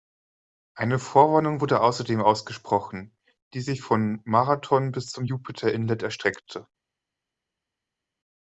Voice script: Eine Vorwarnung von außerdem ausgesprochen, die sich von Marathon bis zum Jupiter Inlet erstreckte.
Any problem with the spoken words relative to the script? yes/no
yes